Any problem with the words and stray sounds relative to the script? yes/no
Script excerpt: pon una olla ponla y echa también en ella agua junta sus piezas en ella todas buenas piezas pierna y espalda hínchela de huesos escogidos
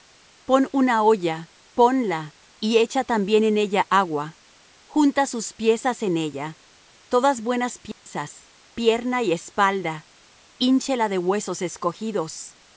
yes